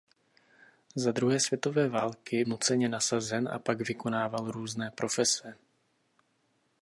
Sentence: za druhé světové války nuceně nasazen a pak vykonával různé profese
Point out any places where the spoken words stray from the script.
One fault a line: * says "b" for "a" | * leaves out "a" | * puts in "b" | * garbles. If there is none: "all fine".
all fine